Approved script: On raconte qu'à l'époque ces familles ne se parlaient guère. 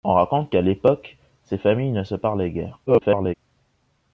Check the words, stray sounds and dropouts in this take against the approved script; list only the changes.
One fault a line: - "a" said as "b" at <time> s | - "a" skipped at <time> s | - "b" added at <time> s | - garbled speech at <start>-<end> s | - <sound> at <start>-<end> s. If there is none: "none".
- garbled speech at 2.9-3.3 s